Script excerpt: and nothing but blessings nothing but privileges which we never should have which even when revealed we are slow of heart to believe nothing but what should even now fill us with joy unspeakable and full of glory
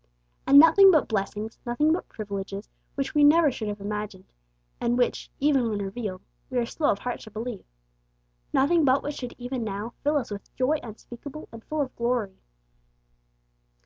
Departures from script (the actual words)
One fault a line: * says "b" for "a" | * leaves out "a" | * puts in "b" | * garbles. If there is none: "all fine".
* puts in "imagined and"